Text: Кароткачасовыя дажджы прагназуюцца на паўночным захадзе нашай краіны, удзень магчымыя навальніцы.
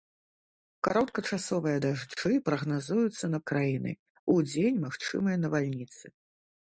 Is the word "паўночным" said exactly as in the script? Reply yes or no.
no